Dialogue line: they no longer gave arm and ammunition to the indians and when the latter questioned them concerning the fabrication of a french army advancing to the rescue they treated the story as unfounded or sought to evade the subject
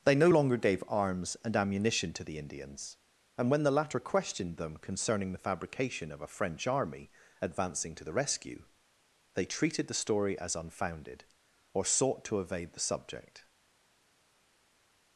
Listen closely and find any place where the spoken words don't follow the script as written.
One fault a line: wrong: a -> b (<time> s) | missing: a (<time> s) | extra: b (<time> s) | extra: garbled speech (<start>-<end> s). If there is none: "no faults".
wrong: arm -> arms (0.9 s)